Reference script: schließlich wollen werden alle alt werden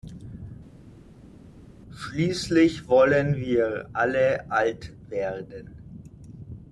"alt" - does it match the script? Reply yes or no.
yes